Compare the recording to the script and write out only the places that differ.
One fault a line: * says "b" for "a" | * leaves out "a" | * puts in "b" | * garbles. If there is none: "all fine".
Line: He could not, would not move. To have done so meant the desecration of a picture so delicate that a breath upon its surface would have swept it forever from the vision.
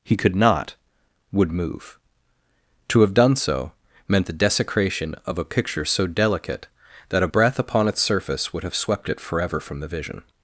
* leaves out "not"